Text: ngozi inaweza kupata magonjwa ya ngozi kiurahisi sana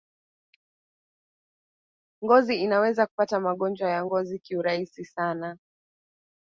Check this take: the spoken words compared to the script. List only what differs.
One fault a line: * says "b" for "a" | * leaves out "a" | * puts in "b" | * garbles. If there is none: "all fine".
all fine